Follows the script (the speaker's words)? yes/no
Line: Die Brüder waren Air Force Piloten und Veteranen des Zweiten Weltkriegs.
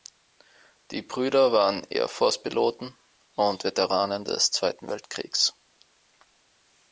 yes